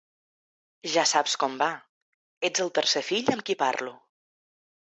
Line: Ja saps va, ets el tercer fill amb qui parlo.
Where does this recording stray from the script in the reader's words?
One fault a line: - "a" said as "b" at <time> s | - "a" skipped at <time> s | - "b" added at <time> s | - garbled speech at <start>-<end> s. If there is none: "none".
- "com" added at 1.4 s